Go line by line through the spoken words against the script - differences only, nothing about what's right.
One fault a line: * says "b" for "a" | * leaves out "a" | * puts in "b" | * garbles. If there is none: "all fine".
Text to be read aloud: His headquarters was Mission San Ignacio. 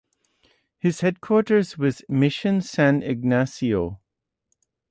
all fine